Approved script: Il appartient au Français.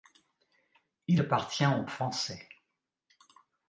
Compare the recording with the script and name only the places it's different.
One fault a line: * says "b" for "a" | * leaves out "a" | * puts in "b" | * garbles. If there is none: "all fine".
all fine